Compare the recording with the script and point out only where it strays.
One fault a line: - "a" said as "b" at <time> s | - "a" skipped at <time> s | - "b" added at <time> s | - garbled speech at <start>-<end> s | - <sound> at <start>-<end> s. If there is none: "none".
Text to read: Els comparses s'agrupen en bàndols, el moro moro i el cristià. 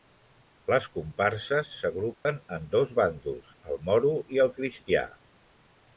- "Els" said as "Les" at 0.7 s
- dropout at 2.1-2.3 s
- "dos" added at 2.7 s
- "moro" skipped at 4.2 s